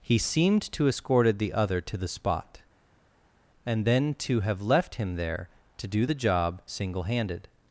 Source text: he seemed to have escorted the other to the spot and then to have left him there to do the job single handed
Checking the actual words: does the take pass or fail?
fail